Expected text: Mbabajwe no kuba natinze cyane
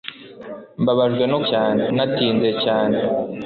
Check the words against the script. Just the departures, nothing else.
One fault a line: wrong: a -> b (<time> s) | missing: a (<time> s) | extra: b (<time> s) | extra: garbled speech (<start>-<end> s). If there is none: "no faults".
wrong: kuba -> cyane (1.5 s)